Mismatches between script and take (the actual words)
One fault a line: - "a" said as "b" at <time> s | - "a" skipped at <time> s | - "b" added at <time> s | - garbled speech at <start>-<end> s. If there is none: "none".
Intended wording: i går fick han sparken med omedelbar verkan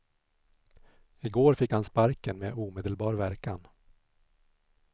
none